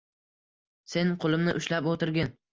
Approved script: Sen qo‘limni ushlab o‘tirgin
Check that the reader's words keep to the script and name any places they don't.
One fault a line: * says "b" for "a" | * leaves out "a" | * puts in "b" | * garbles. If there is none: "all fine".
all fine